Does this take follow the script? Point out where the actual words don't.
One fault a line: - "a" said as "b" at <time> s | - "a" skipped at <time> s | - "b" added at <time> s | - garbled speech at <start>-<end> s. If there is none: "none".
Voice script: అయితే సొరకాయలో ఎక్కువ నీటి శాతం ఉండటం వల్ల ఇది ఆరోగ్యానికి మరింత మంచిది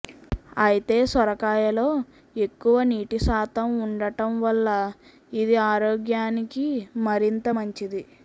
none